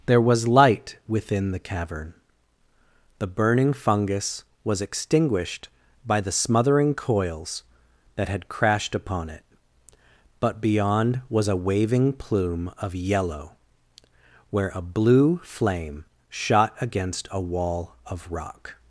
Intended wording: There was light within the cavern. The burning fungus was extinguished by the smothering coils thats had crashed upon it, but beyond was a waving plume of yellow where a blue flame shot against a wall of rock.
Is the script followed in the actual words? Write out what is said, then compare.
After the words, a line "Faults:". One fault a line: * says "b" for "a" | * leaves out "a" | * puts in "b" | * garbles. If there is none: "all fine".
There was light within the cavern. The burning fungus was extinguished by the smothering coils that had crashed upon it, but beyond was a waving plume of yellow where a blue flame shot against a wall of rock.
Faults:
* says "that" for "thats"